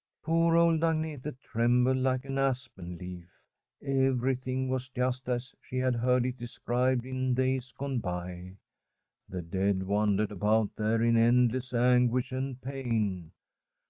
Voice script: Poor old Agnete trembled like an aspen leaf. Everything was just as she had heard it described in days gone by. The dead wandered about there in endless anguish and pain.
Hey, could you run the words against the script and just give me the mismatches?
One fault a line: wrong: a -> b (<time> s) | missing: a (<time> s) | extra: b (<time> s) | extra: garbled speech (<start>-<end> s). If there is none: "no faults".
no faults